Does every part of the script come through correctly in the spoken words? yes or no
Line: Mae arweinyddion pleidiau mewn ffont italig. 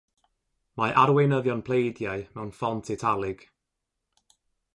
yes